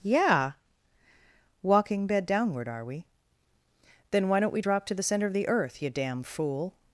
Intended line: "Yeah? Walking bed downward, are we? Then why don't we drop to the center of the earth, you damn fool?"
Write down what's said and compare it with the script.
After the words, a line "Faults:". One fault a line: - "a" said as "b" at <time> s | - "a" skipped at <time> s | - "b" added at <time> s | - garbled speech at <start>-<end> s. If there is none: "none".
"Yeah? Walking bed downward, are we? Then why don't we drop to the center of the earth, you damn fool?"
Faults:
none